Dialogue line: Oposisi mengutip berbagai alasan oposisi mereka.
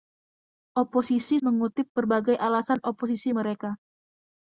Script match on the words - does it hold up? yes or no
yes